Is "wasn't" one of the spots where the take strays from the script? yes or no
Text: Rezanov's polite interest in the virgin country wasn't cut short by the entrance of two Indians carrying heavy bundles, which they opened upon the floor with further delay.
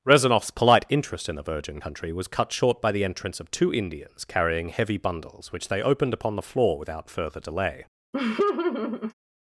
yes